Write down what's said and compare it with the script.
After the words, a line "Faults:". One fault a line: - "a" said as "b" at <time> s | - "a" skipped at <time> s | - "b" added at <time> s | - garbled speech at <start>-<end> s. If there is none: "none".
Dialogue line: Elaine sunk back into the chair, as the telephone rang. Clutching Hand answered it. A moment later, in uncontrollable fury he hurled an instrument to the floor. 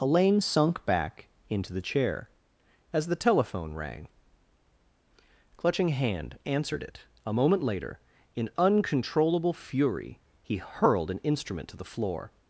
Elaine sunk back into the chair, as the telephone rang. Clutching Hand answered it. A moment later, in uncontrollable fury he hurled an instrument to the floor.
Faults:
none